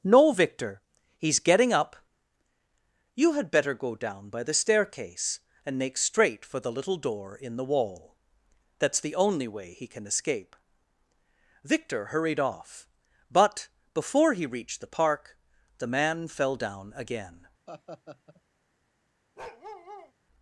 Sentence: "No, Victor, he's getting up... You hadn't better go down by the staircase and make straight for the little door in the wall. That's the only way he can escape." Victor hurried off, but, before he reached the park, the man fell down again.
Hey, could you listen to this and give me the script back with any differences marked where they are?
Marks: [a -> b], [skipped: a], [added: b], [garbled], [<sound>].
"No, Victor, he's getting up... You [hadn't -> had] better go down by the staircase and make straight for the little door in the wall. That's the only way he can escape." Victor hurried off, but, before he reached the park, the man fell down again. [laugh] [bark]